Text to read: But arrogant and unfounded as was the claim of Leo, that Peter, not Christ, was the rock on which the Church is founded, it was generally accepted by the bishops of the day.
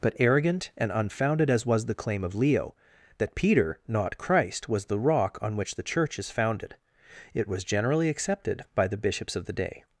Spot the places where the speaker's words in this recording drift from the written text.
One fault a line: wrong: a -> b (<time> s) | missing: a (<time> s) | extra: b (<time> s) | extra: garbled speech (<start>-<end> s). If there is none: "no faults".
no faults